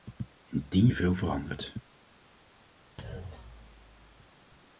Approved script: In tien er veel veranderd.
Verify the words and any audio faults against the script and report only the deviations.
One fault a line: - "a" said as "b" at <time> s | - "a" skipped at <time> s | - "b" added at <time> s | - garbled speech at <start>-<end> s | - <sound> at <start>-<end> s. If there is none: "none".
- thud at 3.0-4.3 s